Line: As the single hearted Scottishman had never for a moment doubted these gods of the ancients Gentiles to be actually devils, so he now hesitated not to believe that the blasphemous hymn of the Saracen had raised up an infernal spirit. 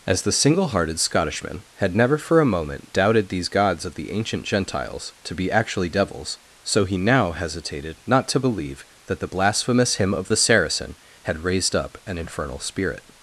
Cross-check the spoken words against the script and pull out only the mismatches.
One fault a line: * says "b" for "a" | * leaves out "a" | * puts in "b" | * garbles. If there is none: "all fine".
* says "ancient" for "ancients"